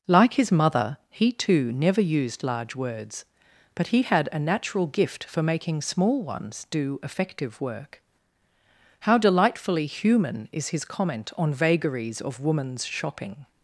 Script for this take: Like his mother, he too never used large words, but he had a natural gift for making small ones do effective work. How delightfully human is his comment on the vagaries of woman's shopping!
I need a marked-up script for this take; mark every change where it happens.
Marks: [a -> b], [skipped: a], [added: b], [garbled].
Like his mother, he too never used large words, but he had a natural gift for making small ones do effective work. How delightfully human is his comment on [skipped: the] vagaries of woman's shopping!